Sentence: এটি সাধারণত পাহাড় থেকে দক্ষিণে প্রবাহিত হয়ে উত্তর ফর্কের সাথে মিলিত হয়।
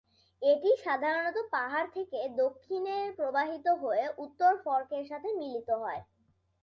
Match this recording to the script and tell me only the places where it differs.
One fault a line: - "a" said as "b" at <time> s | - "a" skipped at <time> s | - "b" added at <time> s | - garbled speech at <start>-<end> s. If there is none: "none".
none